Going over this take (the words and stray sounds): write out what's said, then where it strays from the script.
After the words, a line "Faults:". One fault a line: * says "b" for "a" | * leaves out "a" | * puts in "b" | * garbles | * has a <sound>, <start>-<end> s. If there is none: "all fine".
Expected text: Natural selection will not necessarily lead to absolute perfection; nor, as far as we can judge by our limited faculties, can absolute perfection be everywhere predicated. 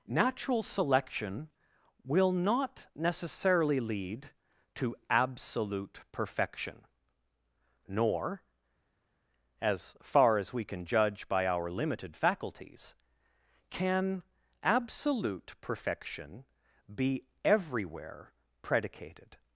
Natural selection will not necessarily lead to absolute perfection; nor, as far as we can judge by our limited faculties, can absolute perfection be everywhere predicated.
Faults:
all fine